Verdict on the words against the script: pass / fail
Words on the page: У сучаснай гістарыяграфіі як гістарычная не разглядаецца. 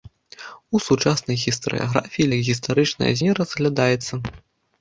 pass